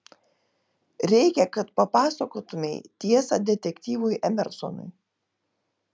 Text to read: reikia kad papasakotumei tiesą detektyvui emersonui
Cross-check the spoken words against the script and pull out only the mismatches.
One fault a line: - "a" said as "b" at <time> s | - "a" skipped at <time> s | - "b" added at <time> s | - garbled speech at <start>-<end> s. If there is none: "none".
none